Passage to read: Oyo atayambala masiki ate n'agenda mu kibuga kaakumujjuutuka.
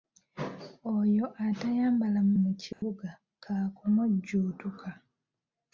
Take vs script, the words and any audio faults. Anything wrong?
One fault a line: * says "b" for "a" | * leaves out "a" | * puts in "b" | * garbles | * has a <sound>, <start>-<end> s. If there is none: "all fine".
* leaves out "masiki ate n'agenda"
* has a dropout, 2.7-2.8 s